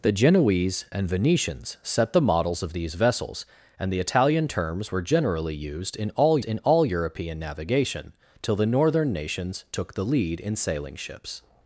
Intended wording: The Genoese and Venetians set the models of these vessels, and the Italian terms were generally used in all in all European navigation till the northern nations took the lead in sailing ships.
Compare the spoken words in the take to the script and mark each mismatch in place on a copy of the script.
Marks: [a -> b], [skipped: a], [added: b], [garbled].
The Genoese and Venetians set the models of these vessels, and the Italian terms were generally used in all in all European navigation till the northern nations took the lead in sailing ships.